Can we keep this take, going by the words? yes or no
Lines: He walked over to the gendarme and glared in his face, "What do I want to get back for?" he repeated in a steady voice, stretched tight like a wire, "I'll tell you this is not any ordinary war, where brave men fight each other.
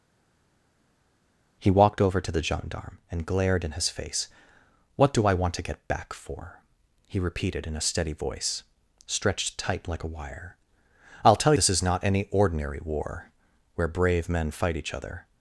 no